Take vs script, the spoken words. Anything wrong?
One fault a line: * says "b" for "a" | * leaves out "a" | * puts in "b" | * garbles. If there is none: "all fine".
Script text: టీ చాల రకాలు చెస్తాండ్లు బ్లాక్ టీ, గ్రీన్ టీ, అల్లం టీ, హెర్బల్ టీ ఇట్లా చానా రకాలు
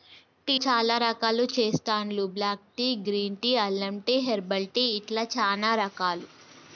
all fine